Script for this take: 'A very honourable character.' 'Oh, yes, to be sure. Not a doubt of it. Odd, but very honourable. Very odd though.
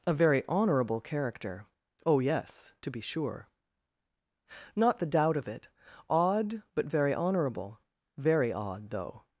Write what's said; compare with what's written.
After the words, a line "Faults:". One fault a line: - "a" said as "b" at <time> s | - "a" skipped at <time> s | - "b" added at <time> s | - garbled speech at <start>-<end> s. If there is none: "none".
'A very honourable character.' 'Oh, yes, to be sure. Not the doubt of it. Odd, but very honourable. Very odd though.
Faults:
- "a" said as "the" at 5.0 s